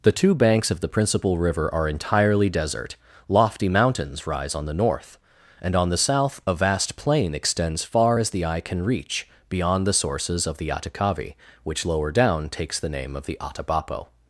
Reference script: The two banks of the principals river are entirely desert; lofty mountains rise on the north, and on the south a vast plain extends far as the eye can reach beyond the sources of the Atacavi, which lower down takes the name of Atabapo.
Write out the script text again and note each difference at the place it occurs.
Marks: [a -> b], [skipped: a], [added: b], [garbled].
The two banks of the [principals -> principal] river are entirely desert; lofty mountains rise on the north, and on the south a vast plain extends far as the eye can reach beyond the sources of the Atacavi, which lower down takes the name of [added: the] Atabapo.